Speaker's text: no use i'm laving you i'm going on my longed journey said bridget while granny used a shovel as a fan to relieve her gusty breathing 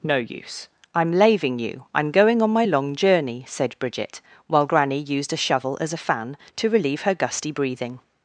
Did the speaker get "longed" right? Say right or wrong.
wrong